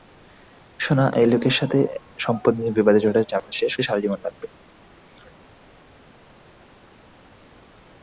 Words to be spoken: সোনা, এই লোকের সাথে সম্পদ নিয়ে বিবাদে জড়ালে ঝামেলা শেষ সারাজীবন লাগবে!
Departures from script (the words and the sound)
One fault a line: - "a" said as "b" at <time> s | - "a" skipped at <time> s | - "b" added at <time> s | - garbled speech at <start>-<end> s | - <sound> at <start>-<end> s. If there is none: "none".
- dropout at 3.4-3.5 s